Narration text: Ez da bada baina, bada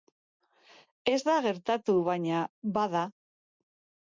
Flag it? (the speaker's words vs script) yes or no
yes